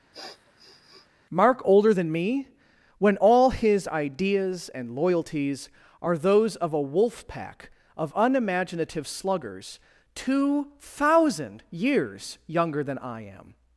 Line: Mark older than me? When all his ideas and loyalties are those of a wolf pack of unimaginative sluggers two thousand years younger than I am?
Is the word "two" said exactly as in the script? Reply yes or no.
yes